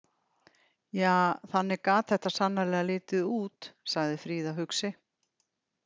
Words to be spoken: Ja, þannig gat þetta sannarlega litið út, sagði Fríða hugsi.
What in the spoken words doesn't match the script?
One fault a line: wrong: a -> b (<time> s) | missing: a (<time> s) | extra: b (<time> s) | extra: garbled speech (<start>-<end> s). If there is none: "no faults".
no faults